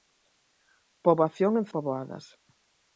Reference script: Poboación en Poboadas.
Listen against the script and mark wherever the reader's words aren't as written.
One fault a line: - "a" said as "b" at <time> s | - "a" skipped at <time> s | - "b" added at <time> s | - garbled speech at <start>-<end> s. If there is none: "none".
none